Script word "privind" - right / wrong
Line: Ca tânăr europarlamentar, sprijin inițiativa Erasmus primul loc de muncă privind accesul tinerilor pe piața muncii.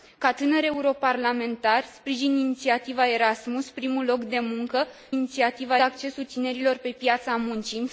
wrong